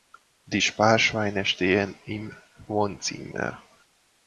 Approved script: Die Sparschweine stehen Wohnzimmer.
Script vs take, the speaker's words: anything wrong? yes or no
yes